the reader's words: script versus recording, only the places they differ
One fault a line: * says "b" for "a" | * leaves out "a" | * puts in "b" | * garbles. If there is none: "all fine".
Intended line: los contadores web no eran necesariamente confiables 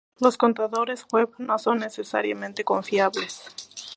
* says "son" for "eran"